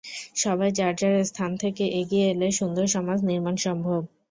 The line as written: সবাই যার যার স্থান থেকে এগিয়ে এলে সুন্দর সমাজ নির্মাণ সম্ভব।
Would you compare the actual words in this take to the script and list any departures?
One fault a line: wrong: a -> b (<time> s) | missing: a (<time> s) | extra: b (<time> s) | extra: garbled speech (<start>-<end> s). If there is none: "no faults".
no faults